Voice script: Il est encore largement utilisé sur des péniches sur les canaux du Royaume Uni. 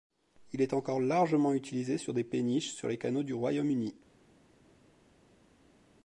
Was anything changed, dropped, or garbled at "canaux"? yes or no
no